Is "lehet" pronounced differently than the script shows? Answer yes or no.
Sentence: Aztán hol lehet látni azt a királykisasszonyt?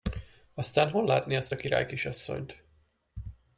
yes